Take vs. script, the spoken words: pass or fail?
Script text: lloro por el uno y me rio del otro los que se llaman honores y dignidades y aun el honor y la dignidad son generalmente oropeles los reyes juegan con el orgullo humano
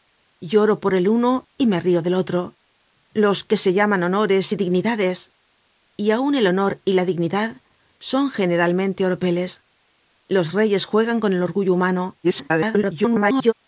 fail